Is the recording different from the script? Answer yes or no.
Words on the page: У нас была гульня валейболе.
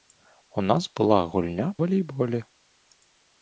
no